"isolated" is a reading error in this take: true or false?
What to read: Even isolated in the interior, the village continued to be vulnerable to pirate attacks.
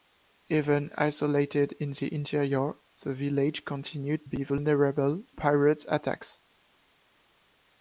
false